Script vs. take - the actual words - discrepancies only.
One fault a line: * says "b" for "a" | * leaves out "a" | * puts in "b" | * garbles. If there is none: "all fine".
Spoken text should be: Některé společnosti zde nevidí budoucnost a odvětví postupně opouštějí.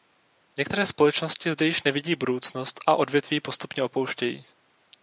* puts in "již"